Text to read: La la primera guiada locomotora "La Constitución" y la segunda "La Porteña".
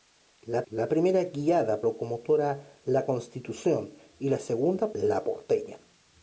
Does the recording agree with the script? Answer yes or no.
yes